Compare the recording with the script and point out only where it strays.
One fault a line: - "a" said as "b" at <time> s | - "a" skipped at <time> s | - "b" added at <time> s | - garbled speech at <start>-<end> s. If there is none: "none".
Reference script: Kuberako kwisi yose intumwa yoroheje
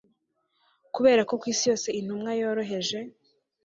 none